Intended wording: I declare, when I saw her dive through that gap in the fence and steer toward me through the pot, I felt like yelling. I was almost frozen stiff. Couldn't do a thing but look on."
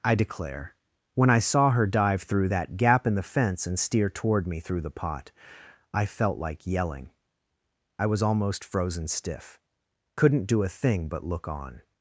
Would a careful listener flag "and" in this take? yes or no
no